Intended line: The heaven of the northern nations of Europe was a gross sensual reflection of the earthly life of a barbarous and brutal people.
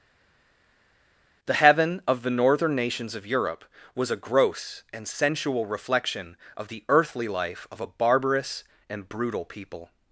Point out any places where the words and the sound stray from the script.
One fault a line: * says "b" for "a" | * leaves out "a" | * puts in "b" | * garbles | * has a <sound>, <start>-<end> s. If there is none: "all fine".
* puts in "and"